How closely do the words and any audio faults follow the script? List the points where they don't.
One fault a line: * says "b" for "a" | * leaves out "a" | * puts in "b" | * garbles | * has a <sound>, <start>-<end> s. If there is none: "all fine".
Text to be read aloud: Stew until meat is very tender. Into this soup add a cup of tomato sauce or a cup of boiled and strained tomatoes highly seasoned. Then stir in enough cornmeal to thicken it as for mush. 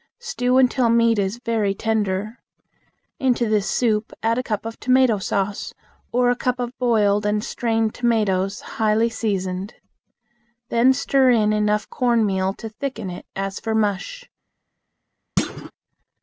* has a thud, 15.4-15.7 s